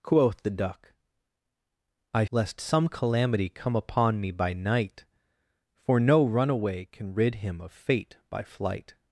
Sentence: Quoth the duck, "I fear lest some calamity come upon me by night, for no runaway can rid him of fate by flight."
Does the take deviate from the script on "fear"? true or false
true